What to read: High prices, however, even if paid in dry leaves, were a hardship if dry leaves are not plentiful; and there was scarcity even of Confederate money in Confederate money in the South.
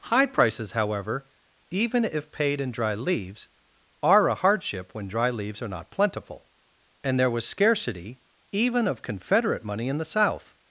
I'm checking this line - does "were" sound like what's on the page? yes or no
no